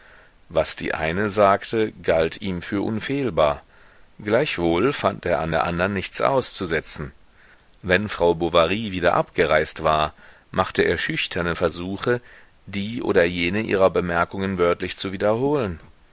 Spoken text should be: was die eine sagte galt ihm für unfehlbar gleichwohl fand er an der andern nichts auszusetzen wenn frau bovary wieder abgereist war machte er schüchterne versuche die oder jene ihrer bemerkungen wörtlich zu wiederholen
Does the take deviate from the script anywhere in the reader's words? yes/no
no